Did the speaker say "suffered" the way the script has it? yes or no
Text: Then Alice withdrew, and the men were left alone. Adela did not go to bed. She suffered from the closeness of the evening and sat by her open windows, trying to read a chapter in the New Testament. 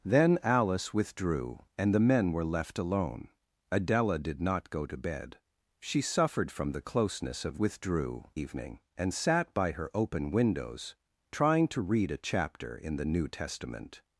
yes